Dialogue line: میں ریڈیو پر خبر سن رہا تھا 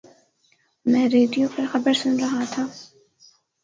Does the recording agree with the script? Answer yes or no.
yes